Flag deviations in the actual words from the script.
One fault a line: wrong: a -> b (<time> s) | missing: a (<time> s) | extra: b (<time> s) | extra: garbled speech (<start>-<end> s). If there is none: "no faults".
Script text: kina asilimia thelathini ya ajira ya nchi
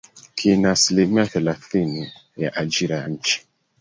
no faults